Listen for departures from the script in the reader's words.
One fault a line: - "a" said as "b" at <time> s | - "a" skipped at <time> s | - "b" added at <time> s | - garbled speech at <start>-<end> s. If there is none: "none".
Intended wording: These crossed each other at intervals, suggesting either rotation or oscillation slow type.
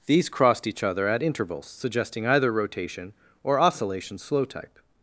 none